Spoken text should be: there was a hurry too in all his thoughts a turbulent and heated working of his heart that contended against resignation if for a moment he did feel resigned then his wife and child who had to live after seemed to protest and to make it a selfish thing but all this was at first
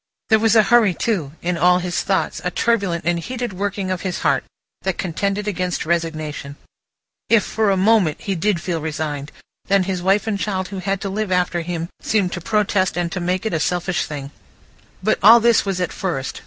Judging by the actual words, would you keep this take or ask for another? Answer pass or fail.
fail